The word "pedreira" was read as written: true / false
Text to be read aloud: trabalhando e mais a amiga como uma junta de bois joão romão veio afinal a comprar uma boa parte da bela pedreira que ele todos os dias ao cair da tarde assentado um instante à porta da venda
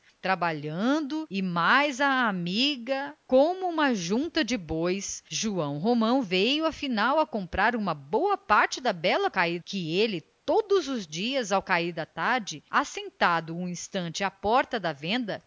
false